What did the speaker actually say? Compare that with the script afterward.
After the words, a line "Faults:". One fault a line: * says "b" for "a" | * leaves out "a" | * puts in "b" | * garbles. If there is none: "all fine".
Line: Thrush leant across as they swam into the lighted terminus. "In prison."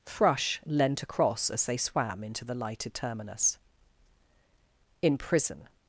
Thrush leant across as they swam into the lighted terminus. "In prison."
Faults:
all fine